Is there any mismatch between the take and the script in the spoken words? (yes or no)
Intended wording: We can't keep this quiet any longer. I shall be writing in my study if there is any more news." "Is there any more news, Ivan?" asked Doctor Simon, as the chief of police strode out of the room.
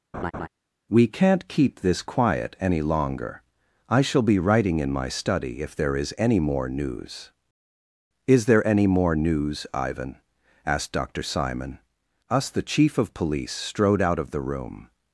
yes